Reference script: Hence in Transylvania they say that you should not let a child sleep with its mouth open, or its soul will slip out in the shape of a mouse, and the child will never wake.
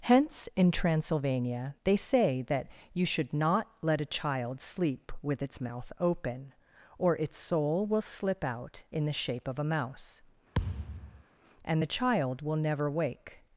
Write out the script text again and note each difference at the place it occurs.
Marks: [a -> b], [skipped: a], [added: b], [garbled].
Hence in Transylvania they say that you should not let a child sleep with its mouth open, or its soul will slip out in the shape of a mouse, and the child will never wake.